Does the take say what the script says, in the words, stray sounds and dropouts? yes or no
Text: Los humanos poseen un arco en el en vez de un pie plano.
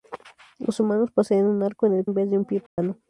no